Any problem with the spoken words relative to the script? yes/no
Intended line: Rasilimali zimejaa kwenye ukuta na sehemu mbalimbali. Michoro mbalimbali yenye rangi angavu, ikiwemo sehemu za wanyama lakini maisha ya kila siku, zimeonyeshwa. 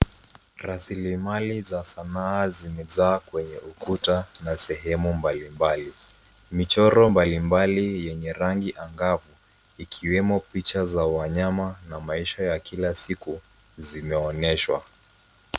yes